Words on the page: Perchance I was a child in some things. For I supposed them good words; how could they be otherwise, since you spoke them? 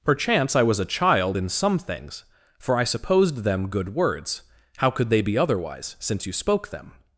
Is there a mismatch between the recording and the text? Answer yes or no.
no